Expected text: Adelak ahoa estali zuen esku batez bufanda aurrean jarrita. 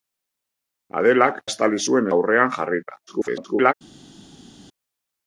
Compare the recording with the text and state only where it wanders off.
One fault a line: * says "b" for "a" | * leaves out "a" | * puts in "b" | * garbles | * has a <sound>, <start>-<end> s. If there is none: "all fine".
* leaves out "ahoa"
* leaves out "esku batez bufanda"
* garbles